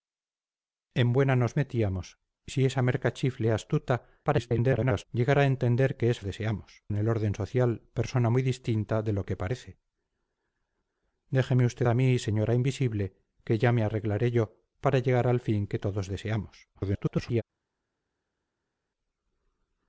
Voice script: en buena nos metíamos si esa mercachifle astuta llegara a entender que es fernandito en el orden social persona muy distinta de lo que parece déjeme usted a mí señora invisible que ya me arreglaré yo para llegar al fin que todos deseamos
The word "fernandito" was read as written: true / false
false